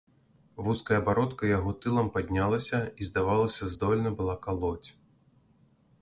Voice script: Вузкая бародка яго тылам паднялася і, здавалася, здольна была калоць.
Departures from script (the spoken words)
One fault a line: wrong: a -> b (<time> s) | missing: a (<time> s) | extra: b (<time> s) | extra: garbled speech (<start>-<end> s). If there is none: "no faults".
no faults